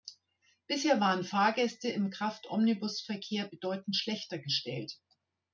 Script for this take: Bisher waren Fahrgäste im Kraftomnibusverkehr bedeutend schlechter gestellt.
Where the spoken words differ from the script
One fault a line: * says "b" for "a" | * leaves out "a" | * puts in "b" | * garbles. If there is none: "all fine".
all fine